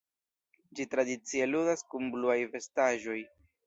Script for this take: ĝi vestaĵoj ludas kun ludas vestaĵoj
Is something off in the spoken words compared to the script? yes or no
yes